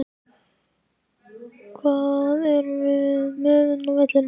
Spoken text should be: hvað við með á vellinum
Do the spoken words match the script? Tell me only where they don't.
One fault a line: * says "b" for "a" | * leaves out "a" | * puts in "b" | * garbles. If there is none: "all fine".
* puts in "erum"
* puts in "inni"